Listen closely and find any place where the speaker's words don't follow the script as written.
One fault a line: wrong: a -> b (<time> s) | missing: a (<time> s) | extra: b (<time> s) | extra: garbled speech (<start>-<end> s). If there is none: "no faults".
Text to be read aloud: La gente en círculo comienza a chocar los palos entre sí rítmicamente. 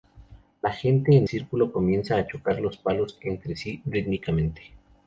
no faults